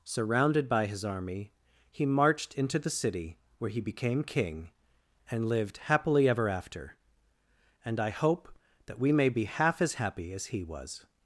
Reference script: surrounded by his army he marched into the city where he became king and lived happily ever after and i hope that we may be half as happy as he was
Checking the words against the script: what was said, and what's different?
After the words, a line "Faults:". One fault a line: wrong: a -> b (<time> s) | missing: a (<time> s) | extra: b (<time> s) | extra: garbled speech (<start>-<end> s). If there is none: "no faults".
surrounded by his army he marched into the city where he became king and lived happily ever after and i hope that we may be half as happy as he was
Faults:
no faults